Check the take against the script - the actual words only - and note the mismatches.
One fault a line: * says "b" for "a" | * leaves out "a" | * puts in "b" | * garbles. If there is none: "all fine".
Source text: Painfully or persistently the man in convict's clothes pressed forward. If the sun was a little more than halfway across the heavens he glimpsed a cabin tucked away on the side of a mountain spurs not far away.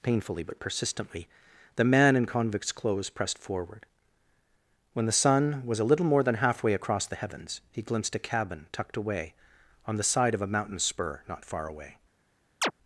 * says "but" for "or"
* says "When" for "If"
* says "spur" for "spurs"